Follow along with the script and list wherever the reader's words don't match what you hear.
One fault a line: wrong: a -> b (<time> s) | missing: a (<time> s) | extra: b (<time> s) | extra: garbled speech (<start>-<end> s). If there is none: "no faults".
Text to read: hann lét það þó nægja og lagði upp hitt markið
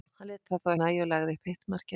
no faults